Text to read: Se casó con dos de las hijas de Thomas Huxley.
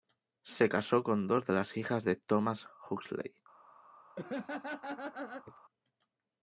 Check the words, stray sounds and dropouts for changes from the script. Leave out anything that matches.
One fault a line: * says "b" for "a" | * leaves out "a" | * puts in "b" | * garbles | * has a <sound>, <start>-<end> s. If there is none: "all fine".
* has a laugh, 4.2-5.6 s